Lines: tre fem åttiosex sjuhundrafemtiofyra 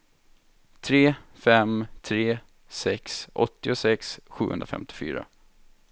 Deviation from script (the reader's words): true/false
true